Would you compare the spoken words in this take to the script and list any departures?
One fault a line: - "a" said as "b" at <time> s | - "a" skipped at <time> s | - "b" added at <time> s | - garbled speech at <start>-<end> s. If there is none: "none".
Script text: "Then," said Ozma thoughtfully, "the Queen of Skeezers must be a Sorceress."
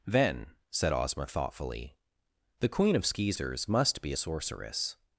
none